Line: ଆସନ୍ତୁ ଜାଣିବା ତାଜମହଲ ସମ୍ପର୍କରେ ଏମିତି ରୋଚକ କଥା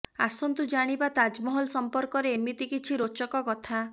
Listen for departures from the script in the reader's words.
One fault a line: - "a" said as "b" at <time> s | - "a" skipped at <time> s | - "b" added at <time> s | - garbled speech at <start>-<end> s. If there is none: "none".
- "କିଛି" added at 2.7 s